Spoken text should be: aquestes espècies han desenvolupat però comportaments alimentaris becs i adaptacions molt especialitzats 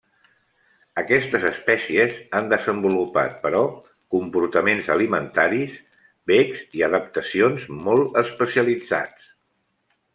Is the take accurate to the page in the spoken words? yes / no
yes